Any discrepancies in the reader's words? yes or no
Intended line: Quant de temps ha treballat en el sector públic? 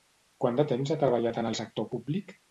no